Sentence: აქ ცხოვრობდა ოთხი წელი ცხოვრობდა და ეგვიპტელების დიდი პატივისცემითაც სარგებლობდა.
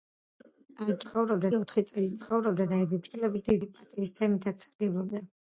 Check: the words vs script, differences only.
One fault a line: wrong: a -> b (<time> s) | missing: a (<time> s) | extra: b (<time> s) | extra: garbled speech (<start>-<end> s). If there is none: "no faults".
no faults